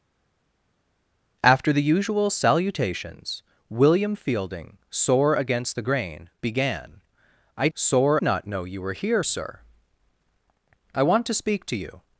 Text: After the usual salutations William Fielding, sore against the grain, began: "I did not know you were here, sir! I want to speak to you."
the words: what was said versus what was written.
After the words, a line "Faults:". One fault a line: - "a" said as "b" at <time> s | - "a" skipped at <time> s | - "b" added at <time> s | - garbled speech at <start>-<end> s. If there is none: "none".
After the usual salutations William Fielding, sore against the grain, began: "I sore not know you were here, sir! I want to speak to you."
Faults:
- "did" said as "sore" at 7.7 s